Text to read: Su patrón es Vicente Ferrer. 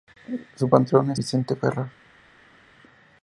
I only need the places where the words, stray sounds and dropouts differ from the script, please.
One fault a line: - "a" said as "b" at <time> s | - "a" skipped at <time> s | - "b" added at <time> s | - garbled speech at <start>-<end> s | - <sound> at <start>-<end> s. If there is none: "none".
none